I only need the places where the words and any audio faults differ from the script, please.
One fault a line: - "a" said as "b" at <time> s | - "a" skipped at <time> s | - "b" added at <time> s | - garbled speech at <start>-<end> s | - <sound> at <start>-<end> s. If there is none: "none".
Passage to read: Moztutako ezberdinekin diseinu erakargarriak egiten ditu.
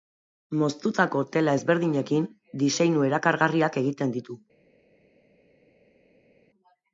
- "tela" added at 1.4 s